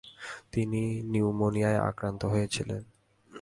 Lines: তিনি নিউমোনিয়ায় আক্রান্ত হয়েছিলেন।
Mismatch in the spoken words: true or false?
false